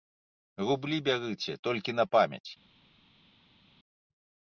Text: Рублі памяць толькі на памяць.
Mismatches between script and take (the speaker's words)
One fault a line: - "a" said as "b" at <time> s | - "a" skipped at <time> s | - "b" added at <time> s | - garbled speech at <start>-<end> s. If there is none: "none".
- "памяць" said as "бярыце" at 1.1 s